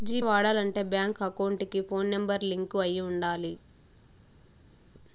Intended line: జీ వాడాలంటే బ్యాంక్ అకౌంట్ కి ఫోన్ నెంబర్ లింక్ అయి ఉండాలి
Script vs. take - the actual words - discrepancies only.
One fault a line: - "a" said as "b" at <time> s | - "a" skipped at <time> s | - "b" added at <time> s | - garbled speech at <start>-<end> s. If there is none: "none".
none